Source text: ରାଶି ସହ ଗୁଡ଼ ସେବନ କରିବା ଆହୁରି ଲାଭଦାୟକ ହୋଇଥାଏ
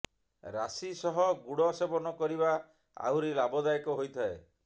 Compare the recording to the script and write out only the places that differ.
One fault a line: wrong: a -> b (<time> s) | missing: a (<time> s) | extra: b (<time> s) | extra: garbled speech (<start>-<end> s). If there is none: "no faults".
no faults